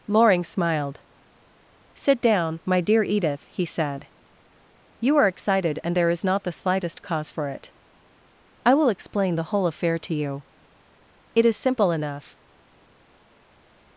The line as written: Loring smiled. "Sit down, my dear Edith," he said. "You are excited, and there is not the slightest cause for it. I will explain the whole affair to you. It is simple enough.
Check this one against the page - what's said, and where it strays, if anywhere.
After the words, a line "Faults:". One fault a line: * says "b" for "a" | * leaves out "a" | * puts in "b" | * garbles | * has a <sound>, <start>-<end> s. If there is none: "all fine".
Loring smiled. "Sit down, my dear Edith," he said. "You are excited, and there is not the slightest cause for it. I will explain the whole affair to you. It is simple enough.
Faults:
all fine